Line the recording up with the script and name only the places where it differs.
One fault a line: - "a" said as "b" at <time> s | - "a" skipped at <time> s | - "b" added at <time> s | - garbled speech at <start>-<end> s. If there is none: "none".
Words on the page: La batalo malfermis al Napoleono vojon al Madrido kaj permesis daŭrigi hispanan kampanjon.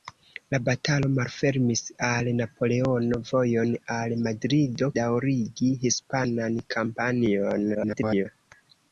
- "kaj permesis" skipped at 4.9 s
- garbled speech at 7.7-8.3 s